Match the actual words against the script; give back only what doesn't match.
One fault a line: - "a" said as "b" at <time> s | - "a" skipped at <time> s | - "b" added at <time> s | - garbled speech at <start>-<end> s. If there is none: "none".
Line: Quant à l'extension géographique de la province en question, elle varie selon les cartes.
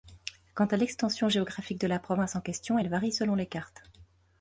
none